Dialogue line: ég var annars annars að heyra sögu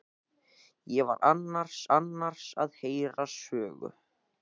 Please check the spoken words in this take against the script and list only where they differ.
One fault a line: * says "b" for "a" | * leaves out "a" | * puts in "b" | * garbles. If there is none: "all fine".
all fine